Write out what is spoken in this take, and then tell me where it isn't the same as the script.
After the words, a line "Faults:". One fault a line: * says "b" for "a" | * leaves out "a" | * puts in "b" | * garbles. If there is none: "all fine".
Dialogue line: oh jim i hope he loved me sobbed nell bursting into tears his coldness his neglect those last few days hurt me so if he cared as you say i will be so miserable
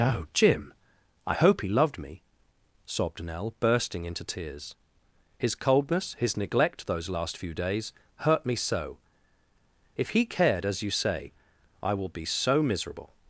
oh jim i hope he loved me sobbed nell bursting into tears his coldness his neglect those last few days hurt me so if he cared as you say i will be so miserable
Faults:
all fine